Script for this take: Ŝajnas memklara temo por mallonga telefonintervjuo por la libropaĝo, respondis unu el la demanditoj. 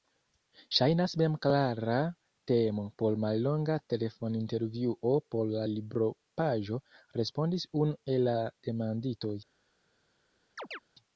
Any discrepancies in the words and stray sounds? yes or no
yes